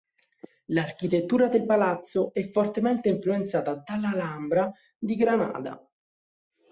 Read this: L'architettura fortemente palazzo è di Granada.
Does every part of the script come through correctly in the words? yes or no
no